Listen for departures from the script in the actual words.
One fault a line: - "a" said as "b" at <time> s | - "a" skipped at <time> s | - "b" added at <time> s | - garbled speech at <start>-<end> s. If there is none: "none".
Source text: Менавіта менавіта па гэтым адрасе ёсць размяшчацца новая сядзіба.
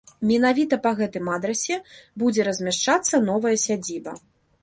- "менавіта" skipped at 0.8 s
- "ёсць" said as "будзе" at 2.2 s